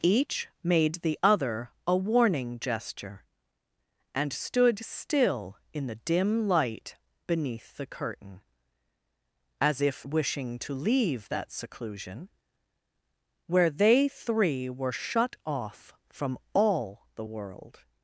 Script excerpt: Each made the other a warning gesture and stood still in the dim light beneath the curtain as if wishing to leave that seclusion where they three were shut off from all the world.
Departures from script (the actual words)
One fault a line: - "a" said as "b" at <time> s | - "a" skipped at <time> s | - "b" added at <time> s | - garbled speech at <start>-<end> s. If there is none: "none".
none